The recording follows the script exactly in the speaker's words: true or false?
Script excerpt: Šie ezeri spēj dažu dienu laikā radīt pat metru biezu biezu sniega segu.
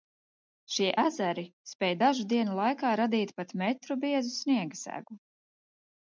false